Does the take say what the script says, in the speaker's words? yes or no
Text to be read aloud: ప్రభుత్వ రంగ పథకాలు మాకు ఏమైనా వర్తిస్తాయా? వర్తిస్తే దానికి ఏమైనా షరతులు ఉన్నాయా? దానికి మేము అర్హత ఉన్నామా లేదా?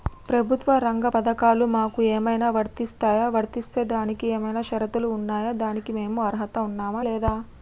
yes